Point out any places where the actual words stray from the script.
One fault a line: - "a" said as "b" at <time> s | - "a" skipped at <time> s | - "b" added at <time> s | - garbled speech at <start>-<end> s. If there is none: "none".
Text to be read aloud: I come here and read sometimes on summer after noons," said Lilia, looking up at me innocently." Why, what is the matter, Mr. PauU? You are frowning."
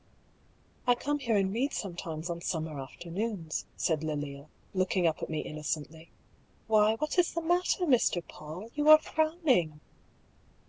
none